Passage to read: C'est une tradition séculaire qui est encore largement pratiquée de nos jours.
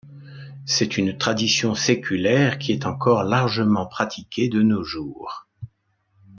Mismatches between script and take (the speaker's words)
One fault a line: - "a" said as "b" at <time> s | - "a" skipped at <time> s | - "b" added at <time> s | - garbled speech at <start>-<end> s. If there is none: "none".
none